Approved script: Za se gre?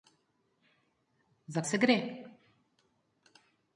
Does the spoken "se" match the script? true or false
true